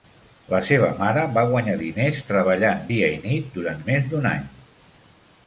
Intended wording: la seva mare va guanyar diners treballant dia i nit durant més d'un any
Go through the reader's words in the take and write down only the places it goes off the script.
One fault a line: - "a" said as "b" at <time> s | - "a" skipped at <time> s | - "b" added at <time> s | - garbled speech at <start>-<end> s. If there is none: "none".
none